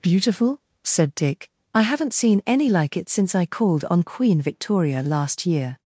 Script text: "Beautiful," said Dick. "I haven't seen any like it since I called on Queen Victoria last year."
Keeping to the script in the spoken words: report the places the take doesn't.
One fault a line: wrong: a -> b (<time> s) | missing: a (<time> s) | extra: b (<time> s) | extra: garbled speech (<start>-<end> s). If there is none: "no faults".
no faults